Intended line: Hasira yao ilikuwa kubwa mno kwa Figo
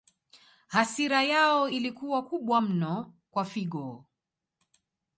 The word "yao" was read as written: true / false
true